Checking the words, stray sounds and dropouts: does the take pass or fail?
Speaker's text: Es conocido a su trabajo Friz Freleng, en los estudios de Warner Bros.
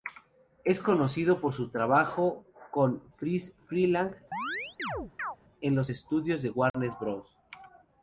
fail